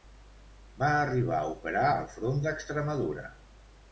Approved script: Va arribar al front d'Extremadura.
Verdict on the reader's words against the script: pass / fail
fail